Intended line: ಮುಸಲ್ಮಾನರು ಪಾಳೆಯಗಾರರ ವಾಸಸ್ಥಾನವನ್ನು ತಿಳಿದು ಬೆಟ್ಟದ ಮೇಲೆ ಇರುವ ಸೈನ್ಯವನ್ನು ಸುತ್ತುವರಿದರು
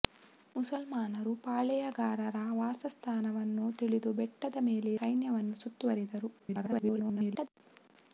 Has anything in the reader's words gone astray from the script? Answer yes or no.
yes